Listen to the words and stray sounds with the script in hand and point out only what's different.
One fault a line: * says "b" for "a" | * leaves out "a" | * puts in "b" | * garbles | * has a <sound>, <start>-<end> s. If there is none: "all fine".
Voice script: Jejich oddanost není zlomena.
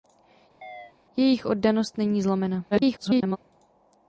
* has a chirp, 0.6-0.9 s
* garbles